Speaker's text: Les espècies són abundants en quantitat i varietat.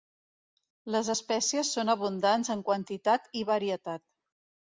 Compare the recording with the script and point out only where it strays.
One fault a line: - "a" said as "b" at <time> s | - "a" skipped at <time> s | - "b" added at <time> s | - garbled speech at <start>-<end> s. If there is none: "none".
none